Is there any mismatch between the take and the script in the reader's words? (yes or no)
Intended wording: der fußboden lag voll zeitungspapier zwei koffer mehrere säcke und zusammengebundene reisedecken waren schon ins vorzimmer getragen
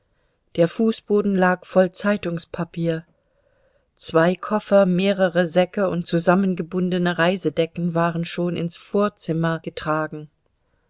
no